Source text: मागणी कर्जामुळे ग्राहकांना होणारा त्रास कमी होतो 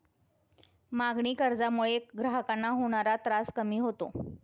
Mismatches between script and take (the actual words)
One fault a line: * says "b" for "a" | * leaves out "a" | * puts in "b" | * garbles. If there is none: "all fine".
all fine